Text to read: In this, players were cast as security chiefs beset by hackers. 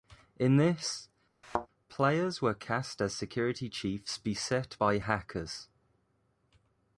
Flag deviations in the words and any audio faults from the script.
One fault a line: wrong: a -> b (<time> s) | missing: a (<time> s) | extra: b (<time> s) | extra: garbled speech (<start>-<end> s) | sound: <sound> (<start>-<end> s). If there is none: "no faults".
sound: thud (1.4-1.7 s)